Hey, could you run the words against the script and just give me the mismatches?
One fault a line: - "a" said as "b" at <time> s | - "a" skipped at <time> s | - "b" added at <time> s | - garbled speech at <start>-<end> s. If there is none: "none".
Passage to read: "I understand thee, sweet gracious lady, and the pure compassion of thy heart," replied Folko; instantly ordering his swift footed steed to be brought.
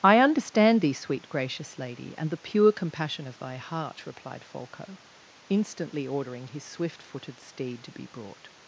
none